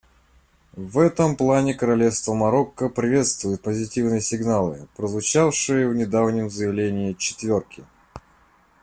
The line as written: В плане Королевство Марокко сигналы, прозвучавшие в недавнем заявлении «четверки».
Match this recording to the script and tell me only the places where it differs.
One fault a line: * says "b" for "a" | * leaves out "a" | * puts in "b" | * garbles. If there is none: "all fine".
* puts in "этом"
* puts in "приветствует позитивные"